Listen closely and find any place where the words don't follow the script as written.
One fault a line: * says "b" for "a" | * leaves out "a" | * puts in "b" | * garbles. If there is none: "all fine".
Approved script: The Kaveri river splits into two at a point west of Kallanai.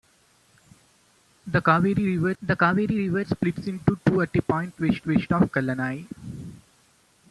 * puts in "the Kaveri river"
* puts in "west"